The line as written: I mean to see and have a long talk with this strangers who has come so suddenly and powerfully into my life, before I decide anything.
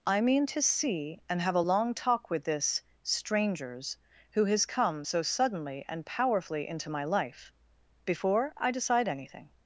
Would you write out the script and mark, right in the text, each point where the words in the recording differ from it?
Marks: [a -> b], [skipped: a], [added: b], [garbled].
I mean to see and have a long talk with this strangers who has come so suddenly and powerfully into my life, before I decide anything.